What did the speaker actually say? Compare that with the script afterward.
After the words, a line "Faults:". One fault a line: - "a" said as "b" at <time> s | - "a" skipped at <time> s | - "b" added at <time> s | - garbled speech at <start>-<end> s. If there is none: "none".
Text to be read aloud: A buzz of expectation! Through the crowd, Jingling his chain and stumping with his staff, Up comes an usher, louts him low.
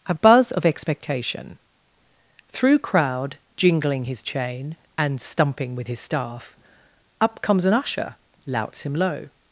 A buzz of expectation! Through crowd, Jingling his chain and stumping with his staff, Up comes an usher, louts him low.
Faults:
- "the" skipped at 2.8 s